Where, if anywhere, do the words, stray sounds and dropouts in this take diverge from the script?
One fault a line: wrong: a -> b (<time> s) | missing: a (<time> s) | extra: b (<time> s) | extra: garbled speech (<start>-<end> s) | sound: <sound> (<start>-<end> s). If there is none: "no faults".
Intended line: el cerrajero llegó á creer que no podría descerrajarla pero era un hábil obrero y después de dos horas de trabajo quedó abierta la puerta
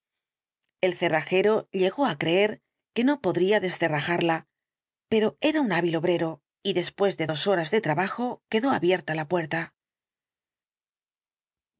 no faults